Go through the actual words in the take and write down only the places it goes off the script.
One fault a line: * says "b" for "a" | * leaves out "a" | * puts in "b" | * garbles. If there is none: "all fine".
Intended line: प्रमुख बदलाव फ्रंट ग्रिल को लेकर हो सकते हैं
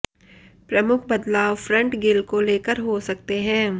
all fine